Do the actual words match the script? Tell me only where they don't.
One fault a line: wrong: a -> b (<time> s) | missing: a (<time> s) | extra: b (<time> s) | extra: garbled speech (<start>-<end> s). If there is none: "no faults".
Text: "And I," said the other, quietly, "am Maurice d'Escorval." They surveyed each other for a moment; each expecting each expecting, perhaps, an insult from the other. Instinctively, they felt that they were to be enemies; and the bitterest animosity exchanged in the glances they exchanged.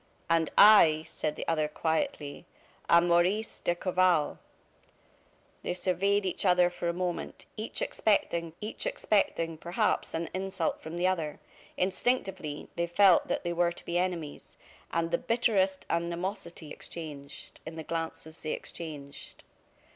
no faults